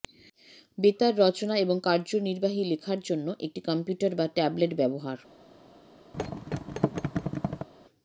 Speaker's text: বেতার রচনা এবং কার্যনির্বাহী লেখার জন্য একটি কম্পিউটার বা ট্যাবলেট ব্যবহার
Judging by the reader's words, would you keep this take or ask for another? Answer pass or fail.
pass